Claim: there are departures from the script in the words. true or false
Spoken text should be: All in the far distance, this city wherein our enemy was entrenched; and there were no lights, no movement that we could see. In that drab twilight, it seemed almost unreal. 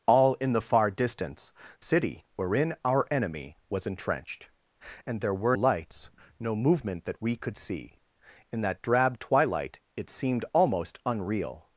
true